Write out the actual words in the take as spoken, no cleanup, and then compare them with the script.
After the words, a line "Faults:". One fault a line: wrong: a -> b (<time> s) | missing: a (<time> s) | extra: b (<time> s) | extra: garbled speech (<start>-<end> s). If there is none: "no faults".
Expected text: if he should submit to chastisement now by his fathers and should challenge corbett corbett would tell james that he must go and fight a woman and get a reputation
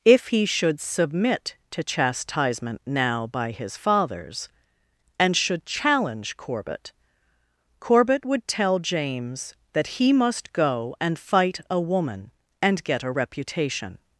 if he should submit to chastisement now by his fathers and should challenge corbett corbett would tell james that he must go and fight a woman and get a reputation
Faults:
no faults